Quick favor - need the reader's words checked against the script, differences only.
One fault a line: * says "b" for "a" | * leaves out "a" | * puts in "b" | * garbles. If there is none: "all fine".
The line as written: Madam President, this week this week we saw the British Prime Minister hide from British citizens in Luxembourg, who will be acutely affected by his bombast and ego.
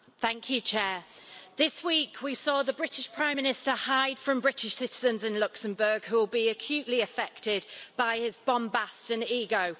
* leaves out "this week"